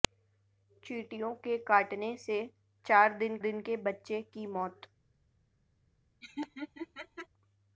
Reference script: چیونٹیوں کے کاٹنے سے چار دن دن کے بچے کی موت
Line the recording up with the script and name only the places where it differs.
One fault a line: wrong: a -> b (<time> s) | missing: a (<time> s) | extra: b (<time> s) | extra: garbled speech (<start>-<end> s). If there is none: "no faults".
no faults